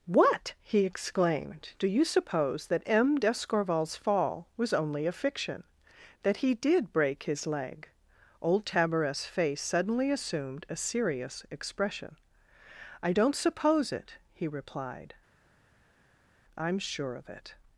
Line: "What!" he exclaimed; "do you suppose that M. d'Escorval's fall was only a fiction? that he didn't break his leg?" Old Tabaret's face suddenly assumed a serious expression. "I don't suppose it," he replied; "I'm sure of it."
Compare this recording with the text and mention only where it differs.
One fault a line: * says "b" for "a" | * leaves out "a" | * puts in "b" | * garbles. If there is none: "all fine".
* says "did" for "didn't"